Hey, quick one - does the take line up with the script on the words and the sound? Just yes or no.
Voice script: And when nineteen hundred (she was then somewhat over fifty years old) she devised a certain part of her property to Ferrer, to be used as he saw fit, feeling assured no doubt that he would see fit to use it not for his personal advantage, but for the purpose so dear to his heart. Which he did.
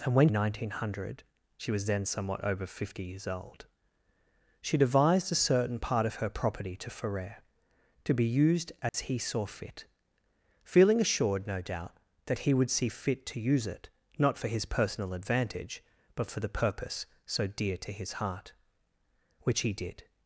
no